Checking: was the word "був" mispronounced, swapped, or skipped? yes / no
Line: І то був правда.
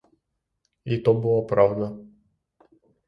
yes